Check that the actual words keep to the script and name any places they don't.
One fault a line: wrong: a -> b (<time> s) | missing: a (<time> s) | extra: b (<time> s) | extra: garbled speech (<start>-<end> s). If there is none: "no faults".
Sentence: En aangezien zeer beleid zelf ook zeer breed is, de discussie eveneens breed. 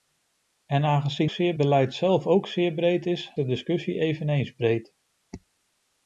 no faults